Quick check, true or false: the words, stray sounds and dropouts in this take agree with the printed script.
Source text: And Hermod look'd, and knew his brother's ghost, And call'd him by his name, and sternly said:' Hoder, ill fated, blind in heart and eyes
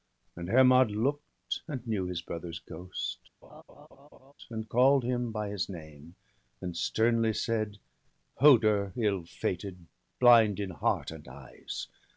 false